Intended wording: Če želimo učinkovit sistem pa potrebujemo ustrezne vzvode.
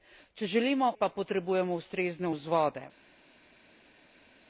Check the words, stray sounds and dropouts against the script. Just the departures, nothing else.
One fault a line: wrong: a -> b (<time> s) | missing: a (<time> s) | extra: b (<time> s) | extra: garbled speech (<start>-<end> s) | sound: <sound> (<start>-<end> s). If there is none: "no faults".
missing: učinkovit sistem (0.9 s)